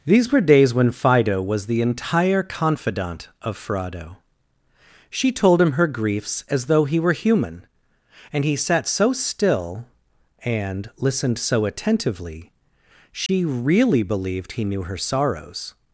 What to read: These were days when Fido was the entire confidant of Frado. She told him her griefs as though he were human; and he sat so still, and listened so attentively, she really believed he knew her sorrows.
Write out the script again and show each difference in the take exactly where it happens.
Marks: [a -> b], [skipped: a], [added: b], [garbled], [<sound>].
These were days when Fido was the entire confidant of Frado. She told him her griefs as though he were human; and he sat so still, and listened so attentively, she [dropout] really believed he knew her sorrows.